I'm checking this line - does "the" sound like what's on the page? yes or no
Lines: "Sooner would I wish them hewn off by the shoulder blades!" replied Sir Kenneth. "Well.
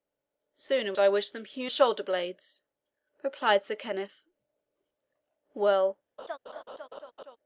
no